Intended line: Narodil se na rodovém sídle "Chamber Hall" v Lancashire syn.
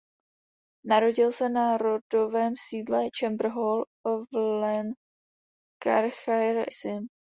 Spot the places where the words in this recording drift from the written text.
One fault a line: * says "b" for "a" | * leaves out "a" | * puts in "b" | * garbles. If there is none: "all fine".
all fine